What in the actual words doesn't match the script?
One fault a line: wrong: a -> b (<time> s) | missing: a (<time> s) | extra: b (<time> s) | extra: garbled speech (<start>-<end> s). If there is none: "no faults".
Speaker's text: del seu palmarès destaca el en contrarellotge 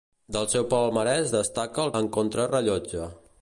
no faults